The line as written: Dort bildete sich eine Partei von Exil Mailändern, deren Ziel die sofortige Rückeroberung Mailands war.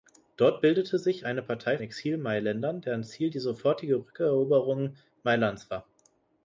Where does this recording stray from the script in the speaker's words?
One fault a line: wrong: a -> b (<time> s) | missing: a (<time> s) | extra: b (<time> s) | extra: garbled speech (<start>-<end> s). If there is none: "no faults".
missing: von (1.8 s)